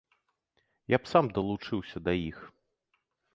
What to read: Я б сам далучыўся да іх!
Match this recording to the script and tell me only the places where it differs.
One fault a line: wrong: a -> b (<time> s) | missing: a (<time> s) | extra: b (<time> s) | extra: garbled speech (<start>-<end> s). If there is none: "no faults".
no faults